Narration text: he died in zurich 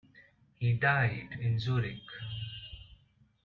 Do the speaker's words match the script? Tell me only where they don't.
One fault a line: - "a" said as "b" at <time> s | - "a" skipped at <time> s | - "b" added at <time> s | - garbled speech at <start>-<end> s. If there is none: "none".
none